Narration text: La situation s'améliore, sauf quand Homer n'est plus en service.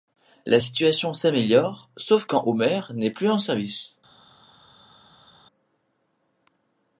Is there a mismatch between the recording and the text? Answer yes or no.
no